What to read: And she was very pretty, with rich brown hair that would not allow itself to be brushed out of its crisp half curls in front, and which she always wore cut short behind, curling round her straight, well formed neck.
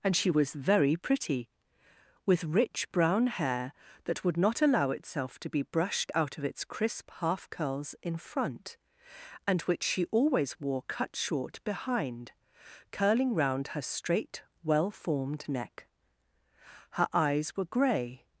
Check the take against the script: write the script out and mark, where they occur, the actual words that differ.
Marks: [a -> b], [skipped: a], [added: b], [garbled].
And she was very pretty, with rich brown hair that would not allow itself to be brushed out of its crisp half curls in front, and which she always wore cut short behind, curling round her straight, well formed neck. [added: Her eyes were gray]